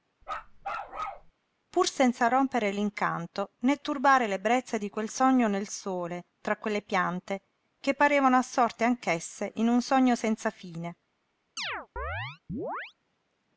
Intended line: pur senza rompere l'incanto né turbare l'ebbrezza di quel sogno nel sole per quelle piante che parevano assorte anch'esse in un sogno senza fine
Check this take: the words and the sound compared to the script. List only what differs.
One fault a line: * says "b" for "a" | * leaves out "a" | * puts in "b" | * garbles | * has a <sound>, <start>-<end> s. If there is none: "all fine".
* has a bark, 0.2-1.3 s
* says "tra" for "per"
* has a chirp, 11.6-12.9 s